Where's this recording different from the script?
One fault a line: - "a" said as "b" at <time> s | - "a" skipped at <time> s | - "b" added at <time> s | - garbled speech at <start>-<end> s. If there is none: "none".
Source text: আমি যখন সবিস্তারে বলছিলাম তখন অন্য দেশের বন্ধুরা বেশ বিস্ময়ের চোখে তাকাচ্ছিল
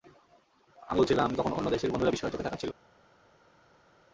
- "যখন সবিস্তারে" skipped at 1.0 s
- "বেশ" skipped at 2.1 s